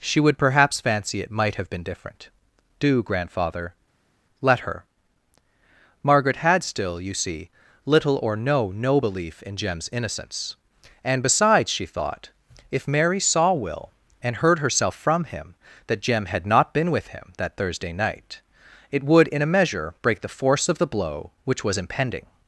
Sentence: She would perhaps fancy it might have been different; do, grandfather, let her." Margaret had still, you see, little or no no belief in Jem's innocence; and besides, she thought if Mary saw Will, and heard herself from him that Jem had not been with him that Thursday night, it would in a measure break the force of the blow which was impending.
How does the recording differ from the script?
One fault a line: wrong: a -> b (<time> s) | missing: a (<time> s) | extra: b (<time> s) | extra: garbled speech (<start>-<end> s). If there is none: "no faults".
no faults